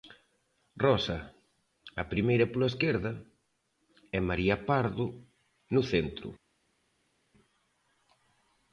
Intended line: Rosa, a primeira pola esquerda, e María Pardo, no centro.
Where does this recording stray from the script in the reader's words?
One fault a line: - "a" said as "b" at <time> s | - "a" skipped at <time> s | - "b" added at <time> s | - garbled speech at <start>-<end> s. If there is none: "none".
none